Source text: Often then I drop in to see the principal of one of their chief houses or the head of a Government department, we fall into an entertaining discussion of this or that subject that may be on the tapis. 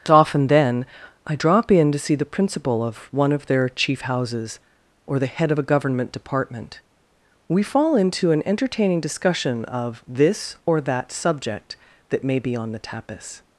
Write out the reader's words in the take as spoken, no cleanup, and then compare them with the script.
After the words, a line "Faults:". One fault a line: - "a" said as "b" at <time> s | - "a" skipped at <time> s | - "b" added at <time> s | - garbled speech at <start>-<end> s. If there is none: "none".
Often then I drop in to see the principal of one of their chief houses or the head of a Government department, we fall into an entertaining discussion of this or that subject that may be on the tapis.
Faults:
none